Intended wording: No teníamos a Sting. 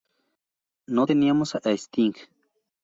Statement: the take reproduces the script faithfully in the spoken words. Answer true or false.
true